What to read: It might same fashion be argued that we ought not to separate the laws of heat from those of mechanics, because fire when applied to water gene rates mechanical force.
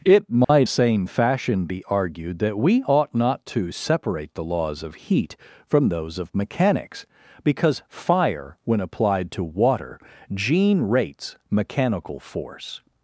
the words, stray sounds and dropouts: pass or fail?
fail